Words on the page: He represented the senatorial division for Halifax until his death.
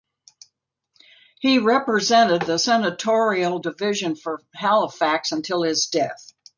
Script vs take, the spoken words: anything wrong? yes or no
no